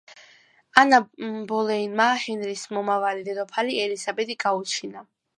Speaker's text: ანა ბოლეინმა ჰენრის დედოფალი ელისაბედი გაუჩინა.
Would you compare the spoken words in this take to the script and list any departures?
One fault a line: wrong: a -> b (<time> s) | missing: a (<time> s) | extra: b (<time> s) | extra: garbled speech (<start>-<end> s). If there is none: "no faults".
extra: მომავალი (2.8 s)